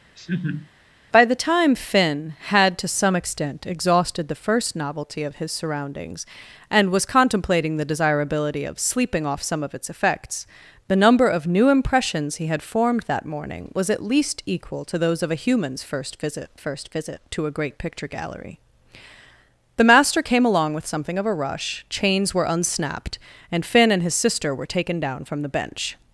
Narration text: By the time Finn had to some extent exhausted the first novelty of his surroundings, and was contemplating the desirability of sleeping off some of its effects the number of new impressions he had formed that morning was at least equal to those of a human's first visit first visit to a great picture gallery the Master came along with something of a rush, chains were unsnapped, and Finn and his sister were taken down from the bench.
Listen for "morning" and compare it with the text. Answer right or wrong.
right